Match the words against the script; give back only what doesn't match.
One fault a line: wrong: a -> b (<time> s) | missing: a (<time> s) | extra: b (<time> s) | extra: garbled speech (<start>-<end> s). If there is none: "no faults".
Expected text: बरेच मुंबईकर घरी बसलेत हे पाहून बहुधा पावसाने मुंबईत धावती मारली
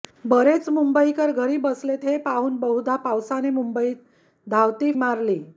no faults